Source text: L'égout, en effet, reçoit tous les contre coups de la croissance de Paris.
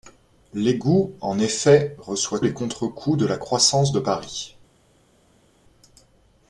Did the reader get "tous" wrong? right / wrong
wrong